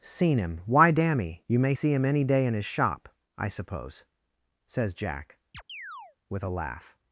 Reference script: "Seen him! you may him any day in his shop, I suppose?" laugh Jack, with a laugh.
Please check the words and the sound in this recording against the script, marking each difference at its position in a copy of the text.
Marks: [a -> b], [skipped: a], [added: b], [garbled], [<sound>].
"Seen him! [added: why dammy] you may [added: see] him any day in his shop, I suppose?" [laugh -> says] Jack, [chirp] with a laugh.